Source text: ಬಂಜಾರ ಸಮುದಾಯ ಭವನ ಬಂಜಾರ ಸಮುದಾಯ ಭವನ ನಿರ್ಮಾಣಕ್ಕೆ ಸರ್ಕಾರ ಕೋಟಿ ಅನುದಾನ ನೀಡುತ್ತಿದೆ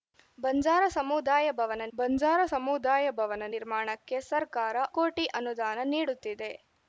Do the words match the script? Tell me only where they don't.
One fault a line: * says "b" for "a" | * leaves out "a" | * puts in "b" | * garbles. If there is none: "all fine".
all fine